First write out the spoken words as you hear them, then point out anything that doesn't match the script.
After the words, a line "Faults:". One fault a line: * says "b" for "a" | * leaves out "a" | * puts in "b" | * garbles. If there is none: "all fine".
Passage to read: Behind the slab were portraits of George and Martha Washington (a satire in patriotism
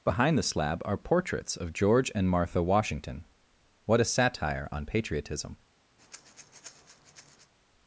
Behind the slab are portraits of George and Martha Washington (what a satire on patriotism
Faults:
* says "are" for "were"
* puts in "what"
* says "on" for "in"